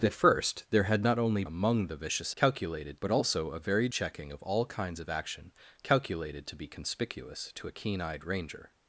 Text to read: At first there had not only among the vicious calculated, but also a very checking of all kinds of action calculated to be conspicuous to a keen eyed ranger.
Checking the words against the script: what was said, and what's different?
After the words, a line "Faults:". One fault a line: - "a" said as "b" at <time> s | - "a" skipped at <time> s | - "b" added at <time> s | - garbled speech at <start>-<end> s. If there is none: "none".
At first there had not only among the vicious calculated, but also a very checking of all kinds of action calculated to be conspicuous to a keen eyed ranger.
Faults:
none